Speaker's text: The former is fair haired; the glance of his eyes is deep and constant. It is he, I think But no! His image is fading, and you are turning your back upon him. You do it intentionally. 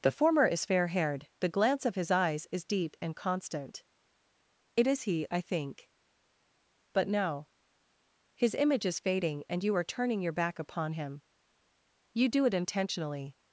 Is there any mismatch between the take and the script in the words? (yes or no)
no